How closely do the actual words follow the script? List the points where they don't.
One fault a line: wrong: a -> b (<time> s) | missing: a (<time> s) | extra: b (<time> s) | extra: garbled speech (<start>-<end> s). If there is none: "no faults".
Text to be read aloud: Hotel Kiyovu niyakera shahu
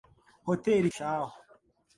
missing: Kiyovu niyakera (0.8 s)